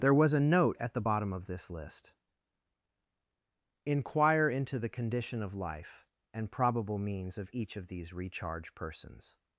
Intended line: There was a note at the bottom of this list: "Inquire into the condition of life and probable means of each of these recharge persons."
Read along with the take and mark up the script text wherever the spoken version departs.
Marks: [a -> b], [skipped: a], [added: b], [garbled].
There was a note at the bottom of this list: "Inquire into the condition of life and probable means of each of these recharge persons."